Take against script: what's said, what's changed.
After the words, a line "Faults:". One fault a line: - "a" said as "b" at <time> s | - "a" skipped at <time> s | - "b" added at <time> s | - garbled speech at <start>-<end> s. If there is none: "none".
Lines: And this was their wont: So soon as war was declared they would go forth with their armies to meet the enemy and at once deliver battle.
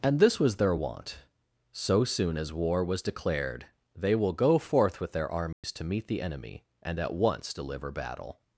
And this was their wont: So soon as war was declared they will go forth with their armies to meet the enemy and at once deliver battle.
Faults:
- "would" said as "will" at 4.1 s